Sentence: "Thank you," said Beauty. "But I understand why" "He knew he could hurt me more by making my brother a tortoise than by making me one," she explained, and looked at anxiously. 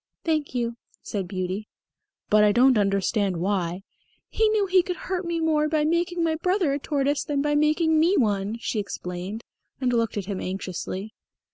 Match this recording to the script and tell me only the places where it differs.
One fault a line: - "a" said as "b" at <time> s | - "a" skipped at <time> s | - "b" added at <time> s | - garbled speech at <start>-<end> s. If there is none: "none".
- "don't" added at 2.5 s
- "him" added at 10.3 s